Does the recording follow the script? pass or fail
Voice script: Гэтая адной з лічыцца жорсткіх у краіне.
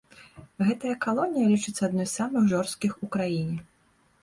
fail